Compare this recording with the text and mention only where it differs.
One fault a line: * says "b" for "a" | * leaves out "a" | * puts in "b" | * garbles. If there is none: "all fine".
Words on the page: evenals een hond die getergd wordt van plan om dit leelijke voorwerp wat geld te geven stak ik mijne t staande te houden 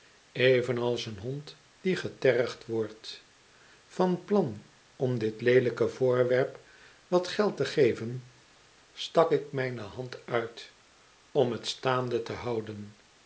* puts in "hand uit om"